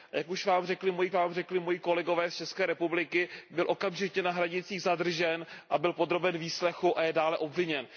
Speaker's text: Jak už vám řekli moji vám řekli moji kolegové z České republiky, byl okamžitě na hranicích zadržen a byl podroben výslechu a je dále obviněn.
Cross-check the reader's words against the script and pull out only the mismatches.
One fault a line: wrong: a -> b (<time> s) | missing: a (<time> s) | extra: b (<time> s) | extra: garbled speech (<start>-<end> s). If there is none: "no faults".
no faults